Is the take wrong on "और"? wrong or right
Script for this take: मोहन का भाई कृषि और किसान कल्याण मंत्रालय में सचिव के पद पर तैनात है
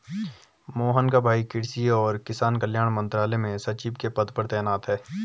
right